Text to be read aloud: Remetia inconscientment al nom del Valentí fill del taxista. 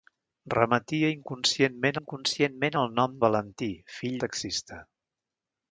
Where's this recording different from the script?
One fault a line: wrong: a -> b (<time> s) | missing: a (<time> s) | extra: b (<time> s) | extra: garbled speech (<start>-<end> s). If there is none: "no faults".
extra: inconscientment (2.0 s)
missing: del (3.2 s)
missing: del (4.2 s)